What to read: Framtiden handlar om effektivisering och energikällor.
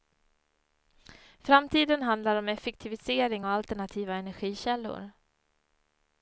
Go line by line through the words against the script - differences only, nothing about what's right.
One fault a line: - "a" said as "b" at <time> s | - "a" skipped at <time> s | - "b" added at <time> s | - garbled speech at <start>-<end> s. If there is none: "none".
- "alternativa" added at 3.5 s